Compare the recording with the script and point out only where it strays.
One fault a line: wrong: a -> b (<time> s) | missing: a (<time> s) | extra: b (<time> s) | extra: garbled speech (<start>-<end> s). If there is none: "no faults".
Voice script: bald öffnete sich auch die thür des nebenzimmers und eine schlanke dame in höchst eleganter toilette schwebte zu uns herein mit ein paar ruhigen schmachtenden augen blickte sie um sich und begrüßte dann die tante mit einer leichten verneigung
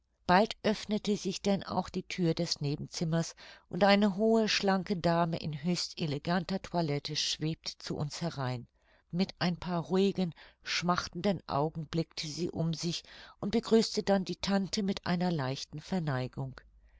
extra: denn (1.4 s)
extra: hohe (4.2 s)